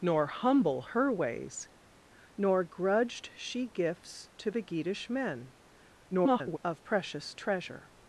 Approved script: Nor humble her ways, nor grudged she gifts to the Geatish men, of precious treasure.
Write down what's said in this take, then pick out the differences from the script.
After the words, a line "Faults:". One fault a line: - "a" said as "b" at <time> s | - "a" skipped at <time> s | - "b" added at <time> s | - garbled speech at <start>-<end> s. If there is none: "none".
Nor humble her ways, nor grudged she gifts to the Geatish men, [garbled] of precious treasure.
Faults:
- garbled speech at 6.1-6.6 s